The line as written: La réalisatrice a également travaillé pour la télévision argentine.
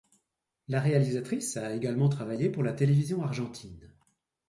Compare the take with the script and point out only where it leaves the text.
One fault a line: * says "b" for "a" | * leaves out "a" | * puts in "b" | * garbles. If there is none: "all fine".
all fine